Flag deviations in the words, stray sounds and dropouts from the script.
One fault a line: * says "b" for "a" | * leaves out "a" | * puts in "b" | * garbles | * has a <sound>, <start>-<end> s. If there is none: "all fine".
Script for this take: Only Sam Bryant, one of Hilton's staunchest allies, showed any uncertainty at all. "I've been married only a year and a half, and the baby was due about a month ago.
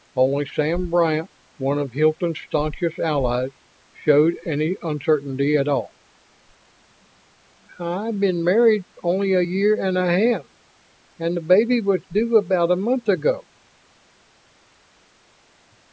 all fine